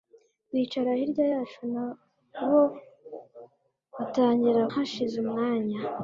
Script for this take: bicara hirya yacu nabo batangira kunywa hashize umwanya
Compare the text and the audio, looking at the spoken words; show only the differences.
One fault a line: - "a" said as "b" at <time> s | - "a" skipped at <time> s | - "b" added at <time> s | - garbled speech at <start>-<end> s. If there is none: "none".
- "kunywa" skipped at 4.6 s